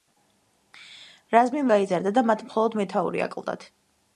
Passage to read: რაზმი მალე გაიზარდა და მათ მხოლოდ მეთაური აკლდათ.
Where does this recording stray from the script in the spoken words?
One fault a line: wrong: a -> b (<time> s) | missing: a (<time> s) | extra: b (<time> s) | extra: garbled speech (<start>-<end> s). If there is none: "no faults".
missing: მალე (1.6 s)